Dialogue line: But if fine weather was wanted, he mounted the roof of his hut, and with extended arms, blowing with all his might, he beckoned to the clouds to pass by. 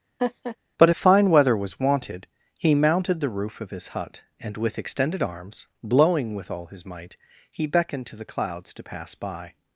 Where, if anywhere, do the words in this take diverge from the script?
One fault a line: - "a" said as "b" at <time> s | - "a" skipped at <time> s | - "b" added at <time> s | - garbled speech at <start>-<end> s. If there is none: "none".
none